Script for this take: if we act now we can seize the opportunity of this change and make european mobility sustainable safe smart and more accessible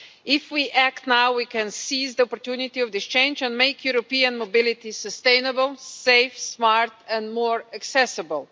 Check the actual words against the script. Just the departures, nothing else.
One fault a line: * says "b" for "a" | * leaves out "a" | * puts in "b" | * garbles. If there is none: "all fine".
all fine